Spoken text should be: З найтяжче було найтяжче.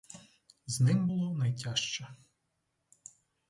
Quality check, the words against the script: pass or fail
fail